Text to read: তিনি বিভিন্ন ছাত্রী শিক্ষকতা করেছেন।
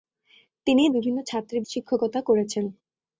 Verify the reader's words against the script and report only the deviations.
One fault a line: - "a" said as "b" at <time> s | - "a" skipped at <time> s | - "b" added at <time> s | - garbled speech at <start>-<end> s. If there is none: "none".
none